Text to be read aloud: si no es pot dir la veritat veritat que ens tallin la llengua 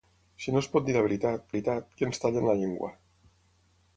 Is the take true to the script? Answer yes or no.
yes